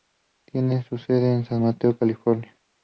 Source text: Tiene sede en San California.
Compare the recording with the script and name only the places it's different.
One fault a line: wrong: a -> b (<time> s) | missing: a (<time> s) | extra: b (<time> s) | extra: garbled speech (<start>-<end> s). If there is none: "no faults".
extra: su (0.8 s)
extra: Mateo (1.6 s)